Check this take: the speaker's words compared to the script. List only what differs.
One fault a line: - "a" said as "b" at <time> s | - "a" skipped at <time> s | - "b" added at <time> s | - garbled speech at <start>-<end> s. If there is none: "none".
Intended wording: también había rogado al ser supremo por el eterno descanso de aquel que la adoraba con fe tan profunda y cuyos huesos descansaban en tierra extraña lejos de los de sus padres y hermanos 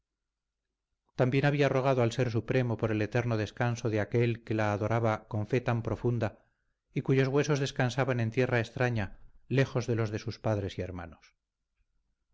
none